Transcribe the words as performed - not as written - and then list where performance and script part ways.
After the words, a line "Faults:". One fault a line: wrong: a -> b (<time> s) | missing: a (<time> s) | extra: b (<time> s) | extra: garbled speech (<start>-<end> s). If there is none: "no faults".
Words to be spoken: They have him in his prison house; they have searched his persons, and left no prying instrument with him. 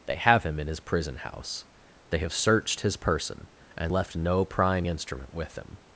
They have him in his prison house; they have searched his person, and left no prying instrument with him.
Faults:
wrong: persons -> person (3.0 s)